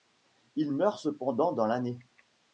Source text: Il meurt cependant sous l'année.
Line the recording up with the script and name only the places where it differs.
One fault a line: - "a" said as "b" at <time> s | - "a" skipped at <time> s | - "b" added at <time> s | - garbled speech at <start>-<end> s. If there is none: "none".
- "sous" said as "dans" at 1.5 s